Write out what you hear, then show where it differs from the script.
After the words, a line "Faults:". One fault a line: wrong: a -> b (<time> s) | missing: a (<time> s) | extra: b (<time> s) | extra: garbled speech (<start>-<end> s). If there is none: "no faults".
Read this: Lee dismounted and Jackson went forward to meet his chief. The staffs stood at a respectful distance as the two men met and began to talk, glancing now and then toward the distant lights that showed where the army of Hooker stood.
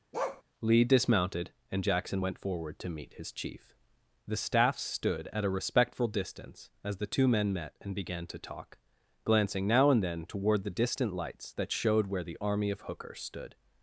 Lee dismounted and Jackson went forward to meet his chief. The staffs stood at a respectful distance as the two men met and began to talk, glancing now and then toward the distant lights that showed where the army of Hooker stood.
Faults:
no faults